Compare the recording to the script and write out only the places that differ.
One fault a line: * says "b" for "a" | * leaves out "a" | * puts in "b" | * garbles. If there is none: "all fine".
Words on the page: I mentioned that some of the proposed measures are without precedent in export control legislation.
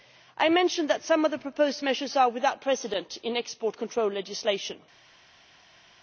all fine